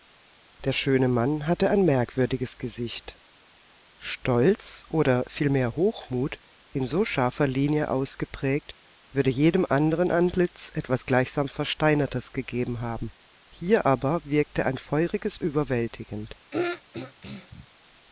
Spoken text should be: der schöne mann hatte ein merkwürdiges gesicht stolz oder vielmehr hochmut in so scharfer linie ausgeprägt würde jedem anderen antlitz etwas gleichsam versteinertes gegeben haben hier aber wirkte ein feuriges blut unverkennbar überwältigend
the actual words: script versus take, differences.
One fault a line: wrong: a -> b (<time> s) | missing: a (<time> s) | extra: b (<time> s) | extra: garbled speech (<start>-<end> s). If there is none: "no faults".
missing: blut unverkennbar (15.4 s)